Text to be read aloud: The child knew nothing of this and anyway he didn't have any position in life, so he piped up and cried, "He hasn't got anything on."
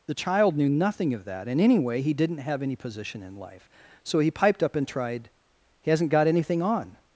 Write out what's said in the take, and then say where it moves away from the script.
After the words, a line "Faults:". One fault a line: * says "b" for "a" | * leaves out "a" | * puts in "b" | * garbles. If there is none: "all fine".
The child knew nothing of that and anyway he didn't have any position in life, so he piped up and tried, "He hasn't got anything on."
Faults:
* says "that" for "this"
* says "tried" for "cried"